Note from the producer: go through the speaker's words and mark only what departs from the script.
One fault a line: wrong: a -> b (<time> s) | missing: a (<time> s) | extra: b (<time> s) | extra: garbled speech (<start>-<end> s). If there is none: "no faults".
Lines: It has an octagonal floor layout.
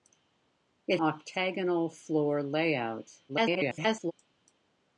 missing: has an (1.0 s)
extra: garbled speech (3.3-4.1 s)